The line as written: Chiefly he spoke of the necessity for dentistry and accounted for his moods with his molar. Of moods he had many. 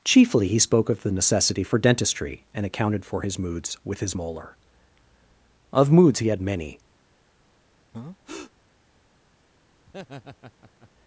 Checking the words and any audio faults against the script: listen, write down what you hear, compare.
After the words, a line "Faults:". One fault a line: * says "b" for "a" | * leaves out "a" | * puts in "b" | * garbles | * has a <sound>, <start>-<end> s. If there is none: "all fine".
Chiefly he spoke of the necessity for dentistry and accounted for his moods with his molar. Of moods he had many.
Faults:
* has a breath, 7.9-8.5 s
* has a laugh, 9.9-10.9 s